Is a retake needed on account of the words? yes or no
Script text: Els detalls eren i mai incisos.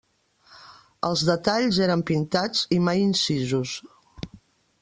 yes